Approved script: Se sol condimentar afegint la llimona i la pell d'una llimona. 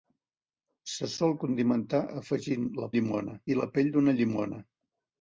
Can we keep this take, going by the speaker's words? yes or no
yes